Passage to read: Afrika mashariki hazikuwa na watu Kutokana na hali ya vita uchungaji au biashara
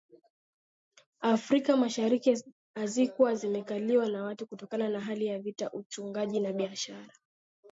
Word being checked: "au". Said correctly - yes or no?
no